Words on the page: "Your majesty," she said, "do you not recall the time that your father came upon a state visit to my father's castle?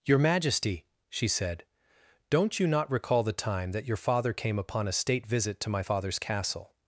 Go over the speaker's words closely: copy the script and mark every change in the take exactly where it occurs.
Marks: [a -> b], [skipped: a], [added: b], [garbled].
"Your majesty," she said, ["do -> don't] you not recall the time that your father came upon a state visit to my father's castle?